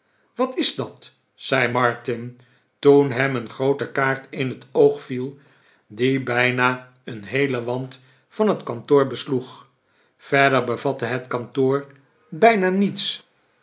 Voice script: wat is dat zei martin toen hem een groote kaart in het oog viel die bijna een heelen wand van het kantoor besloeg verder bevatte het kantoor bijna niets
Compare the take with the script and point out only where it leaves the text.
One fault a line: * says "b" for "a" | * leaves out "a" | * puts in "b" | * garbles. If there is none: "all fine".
all fine